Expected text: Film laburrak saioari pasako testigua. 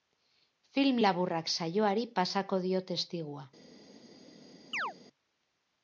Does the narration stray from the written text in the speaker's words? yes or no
yes